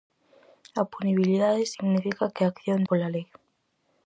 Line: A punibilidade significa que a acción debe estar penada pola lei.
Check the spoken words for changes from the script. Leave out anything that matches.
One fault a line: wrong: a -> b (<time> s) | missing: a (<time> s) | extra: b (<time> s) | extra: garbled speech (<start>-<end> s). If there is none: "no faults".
missing: debe estar penada (2.8 s)